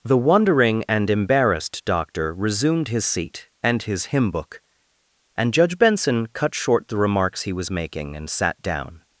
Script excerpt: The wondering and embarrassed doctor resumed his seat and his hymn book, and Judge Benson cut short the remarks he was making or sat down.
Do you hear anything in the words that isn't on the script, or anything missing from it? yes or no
yes